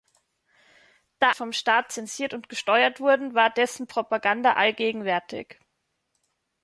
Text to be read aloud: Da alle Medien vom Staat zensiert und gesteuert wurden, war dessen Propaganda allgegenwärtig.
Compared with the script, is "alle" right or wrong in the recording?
wrong